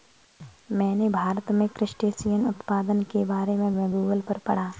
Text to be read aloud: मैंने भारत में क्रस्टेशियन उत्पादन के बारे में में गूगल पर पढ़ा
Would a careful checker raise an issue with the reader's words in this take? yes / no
no